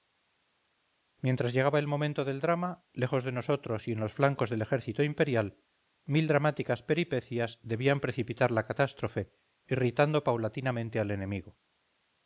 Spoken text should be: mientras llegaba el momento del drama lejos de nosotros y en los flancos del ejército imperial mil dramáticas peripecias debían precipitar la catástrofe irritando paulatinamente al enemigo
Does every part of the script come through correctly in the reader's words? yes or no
yes